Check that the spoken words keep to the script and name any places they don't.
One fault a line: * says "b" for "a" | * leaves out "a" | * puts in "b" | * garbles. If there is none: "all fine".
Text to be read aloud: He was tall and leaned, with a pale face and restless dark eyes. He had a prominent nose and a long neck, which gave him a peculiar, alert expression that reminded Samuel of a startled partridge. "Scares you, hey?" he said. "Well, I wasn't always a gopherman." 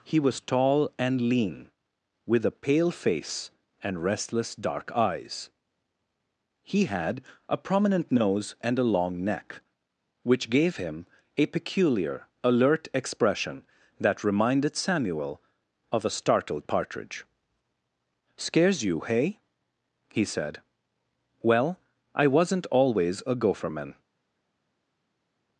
* says "lean" for "leaned"